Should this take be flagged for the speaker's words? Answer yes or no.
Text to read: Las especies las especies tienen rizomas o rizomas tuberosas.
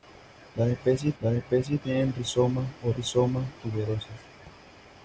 no